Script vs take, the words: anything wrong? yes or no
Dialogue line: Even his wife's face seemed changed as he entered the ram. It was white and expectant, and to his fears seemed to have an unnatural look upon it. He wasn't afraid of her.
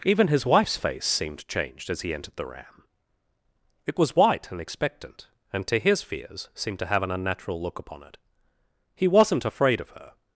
no